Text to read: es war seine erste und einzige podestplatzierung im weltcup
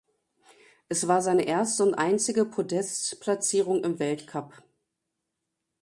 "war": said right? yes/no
yes